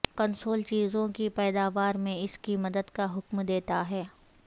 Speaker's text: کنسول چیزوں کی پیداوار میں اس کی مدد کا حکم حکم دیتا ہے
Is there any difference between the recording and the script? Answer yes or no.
yes